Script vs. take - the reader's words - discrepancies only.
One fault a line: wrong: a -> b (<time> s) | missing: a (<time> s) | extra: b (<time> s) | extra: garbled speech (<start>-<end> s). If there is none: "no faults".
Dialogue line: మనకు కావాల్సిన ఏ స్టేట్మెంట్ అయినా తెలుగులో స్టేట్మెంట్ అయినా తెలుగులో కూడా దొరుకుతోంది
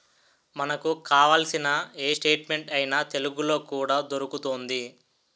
missing: స్టేట్మెంట్ అయినా తెలుగులో (3.6 s)